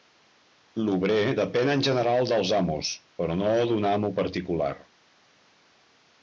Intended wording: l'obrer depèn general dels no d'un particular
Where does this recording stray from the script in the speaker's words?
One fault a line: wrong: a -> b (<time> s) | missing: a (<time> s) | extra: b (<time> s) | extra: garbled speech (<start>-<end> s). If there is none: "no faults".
extra: en (1.7 s)
extra: amos però (2.6 s)
extra: amo (3.9 s)